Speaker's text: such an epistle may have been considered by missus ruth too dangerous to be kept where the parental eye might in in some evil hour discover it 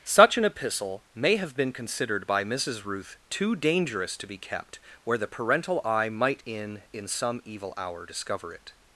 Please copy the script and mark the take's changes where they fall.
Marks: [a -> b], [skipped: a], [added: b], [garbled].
such an epistle may have been considered by missus ruth too dangerous to be kept where the parental eye might in in some evil hour discover it